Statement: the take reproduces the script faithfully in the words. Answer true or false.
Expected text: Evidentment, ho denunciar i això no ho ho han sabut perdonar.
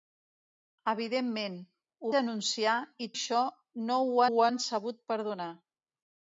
true